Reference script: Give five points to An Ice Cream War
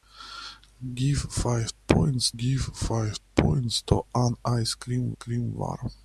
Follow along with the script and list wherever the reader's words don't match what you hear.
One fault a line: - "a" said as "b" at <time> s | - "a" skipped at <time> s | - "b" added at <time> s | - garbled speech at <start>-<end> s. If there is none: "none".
- "give five points" added at 2.4 s
- "Cream" added at 5.1 s